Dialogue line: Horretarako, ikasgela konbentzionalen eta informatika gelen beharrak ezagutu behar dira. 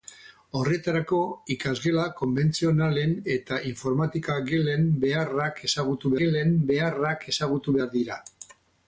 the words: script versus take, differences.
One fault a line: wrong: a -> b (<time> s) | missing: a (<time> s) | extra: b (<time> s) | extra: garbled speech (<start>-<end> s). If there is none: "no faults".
extra: gelen beharrak ezagutu (6.2 s)